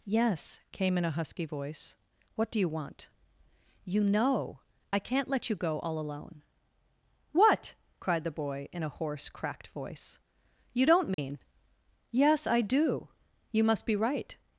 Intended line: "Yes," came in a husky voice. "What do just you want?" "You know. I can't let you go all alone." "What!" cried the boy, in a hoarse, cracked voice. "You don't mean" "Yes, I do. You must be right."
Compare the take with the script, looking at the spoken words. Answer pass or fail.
fail